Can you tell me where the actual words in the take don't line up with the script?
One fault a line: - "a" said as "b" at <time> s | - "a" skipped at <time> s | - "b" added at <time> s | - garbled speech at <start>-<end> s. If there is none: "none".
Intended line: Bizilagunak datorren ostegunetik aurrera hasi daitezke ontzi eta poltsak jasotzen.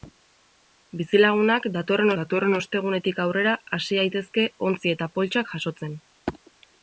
- "datorren" added at 2.2 s